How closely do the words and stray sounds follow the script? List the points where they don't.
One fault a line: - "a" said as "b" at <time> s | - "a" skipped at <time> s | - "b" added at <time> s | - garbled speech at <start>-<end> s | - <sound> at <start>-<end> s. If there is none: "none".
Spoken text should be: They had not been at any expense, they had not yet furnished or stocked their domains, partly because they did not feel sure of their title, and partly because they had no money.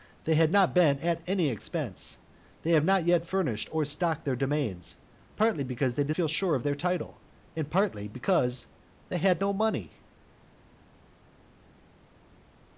- "not" skipped at 6.1 s